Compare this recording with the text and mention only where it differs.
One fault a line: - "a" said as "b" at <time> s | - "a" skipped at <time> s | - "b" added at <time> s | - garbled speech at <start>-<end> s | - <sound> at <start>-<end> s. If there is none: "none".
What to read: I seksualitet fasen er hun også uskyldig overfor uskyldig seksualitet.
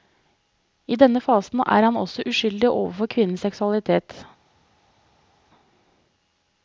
- "seksualitet" said as "denne" at 1.0 s
- "hun" said as "han" at 1.9 s
- "uskyldig" said as "kvinnens" at 3.0 s